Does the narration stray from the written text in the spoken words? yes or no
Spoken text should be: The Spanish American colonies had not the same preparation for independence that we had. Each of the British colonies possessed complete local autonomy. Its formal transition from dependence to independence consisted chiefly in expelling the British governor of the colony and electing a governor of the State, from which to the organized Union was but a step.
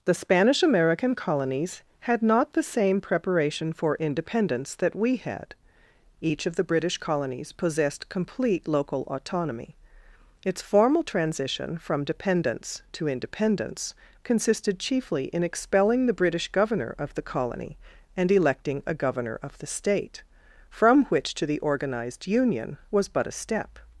no